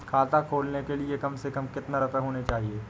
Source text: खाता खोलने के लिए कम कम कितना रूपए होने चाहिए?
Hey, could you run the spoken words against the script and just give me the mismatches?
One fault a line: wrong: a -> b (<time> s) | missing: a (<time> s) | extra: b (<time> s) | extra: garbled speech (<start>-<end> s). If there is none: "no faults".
extra: से (1.4 s)